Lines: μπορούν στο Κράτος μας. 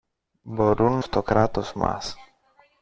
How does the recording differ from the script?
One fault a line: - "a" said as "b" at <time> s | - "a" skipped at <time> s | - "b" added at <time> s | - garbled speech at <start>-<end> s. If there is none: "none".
none